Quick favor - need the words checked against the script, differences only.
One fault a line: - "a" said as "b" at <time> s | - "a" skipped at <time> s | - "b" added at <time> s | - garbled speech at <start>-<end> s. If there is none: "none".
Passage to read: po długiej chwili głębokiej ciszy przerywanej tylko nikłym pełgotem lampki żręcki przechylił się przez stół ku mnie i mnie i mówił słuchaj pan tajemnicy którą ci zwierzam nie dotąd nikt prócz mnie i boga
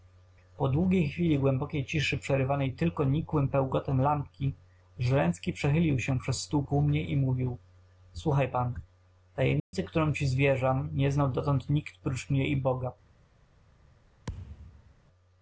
- "mnie i" skipped at 7.2 s
- "znał" added at 11.1 s